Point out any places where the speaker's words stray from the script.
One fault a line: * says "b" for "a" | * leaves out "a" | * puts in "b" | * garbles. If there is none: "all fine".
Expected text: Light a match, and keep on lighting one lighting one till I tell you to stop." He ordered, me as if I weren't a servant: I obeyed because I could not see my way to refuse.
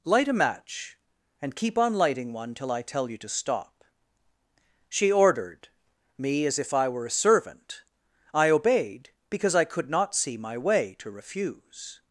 * leaves out "lighting one"
* says "She" for "He"
* says "were" for "weren't"